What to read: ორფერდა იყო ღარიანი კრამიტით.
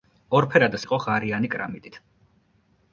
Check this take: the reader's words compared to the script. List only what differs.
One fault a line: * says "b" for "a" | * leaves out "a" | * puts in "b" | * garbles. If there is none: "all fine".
all fine